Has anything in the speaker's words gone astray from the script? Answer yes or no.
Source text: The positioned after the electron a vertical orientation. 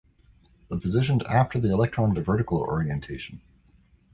no